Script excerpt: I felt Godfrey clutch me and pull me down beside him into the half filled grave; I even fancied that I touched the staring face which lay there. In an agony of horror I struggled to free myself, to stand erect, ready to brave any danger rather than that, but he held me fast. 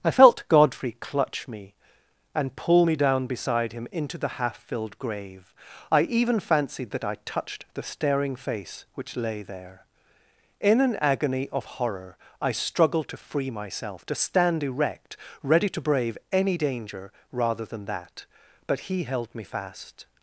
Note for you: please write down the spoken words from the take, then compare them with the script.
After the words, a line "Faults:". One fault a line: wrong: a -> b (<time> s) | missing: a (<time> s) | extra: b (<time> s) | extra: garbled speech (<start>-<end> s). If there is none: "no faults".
I felt Godfrey clutch me and pull me down beside him into the half filled grave; I even fancied that I touched the staring face which lay there. In an agony of horror I struggled to free myself, to stand erect, ready to brave any danger rather than that, but he held me fast.
Faults:
no faults